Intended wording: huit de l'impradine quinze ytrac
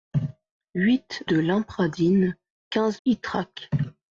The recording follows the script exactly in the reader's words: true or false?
true